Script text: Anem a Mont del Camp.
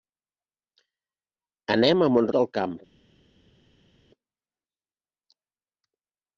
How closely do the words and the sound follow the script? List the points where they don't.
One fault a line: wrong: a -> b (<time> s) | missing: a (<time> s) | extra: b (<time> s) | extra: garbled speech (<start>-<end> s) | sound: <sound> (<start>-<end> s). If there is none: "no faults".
no faults